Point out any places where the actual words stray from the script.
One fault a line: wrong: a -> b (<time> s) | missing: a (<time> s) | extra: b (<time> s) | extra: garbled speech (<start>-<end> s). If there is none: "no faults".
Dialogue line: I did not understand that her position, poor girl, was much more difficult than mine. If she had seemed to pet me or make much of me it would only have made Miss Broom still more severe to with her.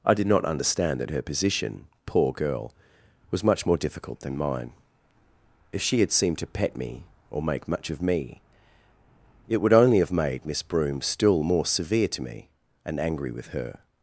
extra: me and angry (12.2 s)